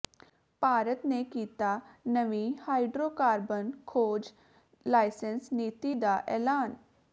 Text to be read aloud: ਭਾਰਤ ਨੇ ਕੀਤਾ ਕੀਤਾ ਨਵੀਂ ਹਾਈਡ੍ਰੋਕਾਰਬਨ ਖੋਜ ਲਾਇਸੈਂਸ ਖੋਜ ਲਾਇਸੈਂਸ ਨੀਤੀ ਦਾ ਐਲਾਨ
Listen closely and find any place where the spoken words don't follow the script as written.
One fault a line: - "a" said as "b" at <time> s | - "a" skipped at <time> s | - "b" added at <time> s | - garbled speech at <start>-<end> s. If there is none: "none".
- "ਕੀਤਾ" skipped at 1.8 s
- "ਖੋਜ ਲਾਇਸੈਂਸ" skipped at 5.5 s